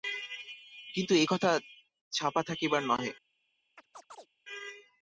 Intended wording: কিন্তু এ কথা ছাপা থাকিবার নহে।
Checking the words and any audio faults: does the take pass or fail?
fail